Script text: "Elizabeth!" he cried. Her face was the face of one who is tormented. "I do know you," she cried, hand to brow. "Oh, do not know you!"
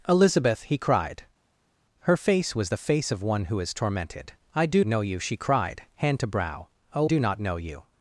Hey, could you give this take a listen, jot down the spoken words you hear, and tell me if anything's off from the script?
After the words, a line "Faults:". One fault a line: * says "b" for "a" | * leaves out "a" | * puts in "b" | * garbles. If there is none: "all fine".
"Elizabeth!" he cried. Her face was the face of one who is tormented. "I do know you," she cried, hand to brow. "Oh, do not know you!"
Faults:
all fine